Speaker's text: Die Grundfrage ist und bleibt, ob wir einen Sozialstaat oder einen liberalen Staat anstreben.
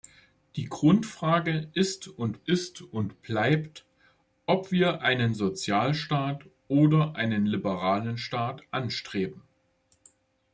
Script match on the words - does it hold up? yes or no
no